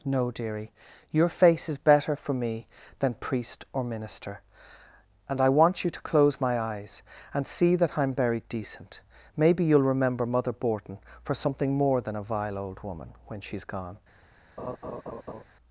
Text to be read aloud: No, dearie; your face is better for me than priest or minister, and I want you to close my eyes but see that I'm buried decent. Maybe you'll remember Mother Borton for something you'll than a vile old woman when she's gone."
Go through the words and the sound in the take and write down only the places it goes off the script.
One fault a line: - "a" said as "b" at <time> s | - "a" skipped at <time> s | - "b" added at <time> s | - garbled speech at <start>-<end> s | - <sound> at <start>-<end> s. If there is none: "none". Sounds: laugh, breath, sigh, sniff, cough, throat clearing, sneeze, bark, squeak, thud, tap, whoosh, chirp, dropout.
- "but" said as "and" at 7.3 s
- "you'll" said as "more" at 11.8 s
- laugh at 14.6-15.4 s